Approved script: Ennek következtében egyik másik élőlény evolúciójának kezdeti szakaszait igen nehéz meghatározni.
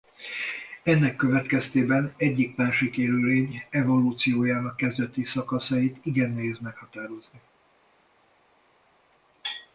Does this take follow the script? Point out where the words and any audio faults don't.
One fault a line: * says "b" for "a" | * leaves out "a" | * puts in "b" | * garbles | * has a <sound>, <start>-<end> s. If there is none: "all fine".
all fine